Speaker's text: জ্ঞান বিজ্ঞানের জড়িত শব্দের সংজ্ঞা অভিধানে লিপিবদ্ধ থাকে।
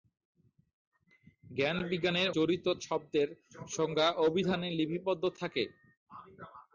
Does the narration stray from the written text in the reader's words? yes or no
no